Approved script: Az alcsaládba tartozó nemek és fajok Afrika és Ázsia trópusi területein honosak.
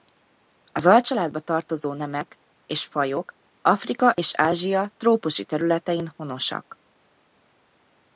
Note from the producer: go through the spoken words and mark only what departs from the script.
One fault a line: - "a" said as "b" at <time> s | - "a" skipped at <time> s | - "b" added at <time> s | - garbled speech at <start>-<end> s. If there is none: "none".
none